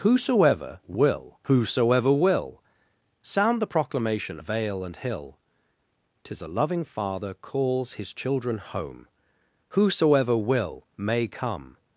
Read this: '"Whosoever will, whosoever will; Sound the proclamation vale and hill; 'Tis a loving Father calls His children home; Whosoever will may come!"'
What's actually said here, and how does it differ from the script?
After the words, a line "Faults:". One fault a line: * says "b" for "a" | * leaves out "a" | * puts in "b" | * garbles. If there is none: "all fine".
'"Whosoever will, whosoever will; Sound the proclamation vale and hill; 'Tis a loving Father calls His children home; Whosoever will may come!"'
Faults:
all fine